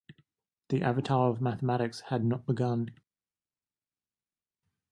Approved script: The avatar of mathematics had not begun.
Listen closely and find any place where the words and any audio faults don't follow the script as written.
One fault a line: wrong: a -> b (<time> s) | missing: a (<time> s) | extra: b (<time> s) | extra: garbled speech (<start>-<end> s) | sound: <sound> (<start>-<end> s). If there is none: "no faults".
no faults